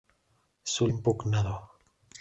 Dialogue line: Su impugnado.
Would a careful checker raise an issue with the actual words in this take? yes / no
no